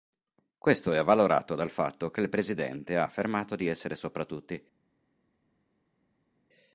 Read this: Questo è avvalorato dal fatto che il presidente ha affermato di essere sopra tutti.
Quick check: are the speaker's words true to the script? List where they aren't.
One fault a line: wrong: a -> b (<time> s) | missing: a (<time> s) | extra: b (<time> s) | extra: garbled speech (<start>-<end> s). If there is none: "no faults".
no faults